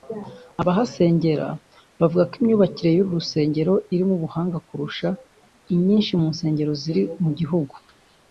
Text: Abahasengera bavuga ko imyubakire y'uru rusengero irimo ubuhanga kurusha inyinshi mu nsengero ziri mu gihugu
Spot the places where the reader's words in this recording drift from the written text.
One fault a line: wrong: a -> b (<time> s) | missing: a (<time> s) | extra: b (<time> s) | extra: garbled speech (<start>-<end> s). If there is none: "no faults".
no faults